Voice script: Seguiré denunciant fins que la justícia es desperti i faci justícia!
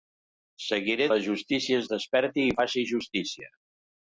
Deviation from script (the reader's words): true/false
true